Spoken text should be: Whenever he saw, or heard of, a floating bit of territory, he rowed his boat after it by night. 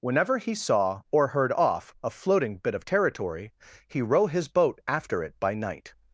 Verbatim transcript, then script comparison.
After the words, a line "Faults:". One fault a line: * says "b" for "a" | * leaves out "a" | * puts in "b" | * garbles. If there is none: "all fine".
Whenever he saw, or heard off, a floating bit of territory, he row his boat after it by night.
Faults:
* says "off" for "of"
* says "row" for "rowed"